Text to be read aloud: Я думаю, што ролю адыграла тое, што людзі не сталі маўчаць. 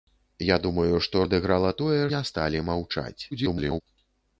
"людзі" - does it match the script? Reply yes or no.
no